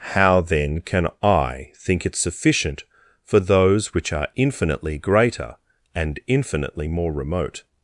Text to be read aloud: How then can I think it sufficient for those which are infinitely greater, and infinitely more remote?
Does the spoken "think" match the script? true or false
true